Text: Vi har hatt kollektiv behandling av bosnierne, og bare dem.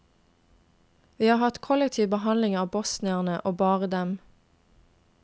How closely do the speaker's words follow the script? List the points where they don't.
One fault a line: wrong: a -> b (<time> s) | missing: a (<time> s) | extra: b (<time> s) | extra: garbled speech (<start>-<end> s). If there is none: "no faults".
no faults